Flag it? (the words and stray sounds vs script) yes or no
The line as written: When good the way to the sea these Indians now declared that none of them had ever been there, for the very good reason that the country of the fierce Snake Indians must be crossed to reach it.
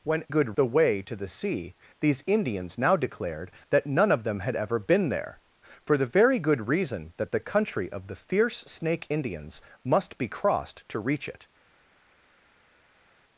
no